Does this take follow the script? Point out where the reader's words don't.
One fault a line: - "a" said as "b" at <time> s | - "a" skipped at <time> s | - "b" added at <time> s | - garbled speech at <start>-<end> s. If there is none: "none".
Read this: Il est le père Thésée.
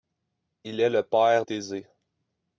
none